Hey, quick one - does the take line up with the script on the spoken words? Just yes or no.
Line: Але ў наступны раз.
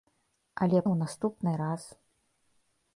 yes